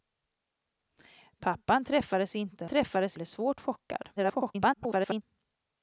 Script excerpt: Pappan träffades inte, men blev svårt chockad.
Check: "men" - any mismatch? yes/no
yes